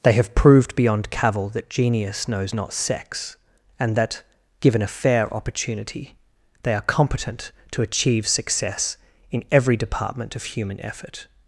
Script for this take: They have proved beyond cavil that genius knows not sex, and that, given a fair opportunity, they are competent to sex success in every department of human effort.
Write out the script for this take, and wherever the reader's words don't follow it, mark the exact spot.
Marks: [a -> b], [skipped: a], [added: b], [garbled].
They have proved beyond cavil that genius knows not sex, and that, given a fair opportunity, they are competent to [sex -> achieve] success in every department of human effort.